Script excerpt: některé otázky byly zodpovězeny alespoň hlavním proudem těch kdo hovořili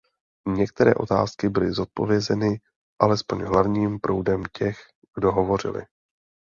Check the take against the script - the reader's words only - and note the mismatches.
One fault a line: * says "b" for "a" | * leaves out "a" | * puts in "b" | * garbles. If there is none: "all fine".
all fine